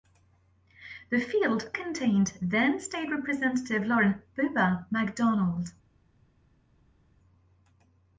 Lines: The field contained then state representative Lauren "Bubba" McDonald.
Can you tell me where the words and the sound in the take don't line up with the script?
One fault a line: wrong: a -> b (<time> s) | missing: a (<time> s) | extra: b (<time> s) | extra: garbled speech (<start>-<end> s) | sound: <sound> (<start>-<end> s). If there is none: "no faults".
no faults